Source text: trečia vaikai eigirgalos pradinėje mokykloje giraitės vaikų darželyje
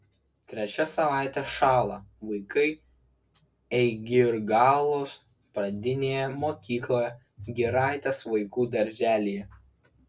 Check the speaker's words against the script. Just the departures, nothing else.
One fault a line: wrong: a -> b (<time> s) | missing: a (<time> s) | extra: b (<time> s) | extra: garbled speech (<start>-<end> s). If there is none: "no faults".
extra: savaitė šąla (0.9 s)